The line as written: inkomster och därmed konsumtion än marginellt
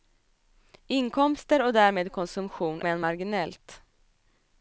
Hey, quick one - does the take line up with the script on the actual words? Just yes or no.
yes